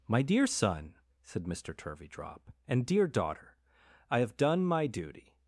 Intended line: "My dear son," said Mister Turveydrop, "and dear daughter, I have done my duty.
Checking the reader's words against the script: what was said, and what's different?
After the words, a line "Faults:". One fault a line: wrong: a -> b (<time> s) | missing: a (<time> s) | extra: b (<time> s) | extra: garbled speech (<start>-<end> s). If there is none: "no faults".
"My dear son," said Mister Turveydrop, "and dear daughter, I have done my duty.
Faults:
no faults